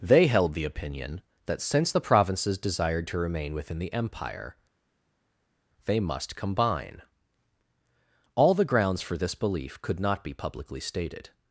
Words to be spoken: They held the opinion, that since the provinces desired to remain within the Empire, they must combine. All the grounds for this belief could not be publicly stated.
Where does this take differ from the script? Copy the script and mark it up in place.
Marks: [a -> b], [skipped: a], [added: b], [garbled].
They held the opinion, that since the provinces desired to remain within the Empire, they must combine. All the grounds for this belief could not be publicly stated.